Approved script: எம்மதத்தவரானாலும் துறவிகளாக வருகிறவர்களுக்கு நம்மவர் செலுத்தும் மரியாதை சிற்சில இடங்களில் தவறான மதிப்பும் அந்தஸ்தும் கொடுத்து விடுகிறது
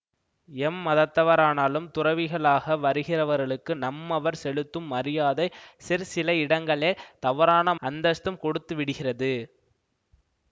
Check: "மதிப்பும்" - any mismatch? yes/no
yes